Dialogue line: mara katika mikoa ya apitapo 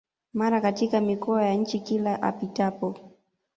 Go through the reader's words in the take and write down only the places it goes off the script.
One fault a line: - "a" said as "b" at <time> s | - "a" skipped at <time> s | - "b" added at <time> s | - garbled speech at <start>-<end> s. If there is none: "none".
- "nchi Kila" added at 1.5 s